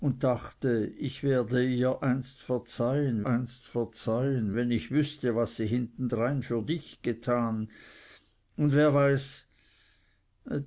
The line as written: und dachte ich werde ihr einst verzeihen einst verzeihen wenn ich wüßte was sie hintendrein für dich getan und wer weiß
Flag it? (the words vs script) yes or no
no